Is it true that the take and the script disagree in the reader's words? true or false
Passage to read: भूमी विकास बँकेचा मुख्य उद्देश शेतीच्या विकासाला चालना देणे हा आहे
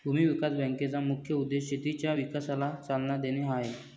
false